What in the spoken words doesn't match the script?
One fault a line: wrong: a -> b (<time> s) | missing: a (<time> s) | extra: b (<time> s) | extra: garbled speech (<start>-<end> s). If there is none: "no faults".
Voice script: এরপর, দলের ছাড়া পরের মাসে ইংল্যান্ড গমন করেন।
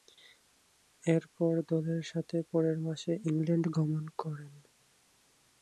wrong: ছাড়া -> সাথে (2.0 s)